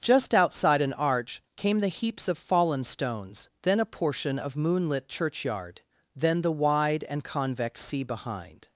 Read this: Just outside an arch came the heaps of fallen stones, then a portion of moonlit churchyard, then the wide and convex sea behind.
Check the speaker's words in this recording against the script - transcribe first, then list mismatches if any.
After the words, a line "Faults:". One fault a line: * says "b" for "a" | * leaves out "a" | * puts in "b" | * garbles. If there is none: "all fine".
Just outside an arch came the heaps of fallen stones, then a portion of moonlit churchyard, then the wide and convex sea behind.
Faults:
all fine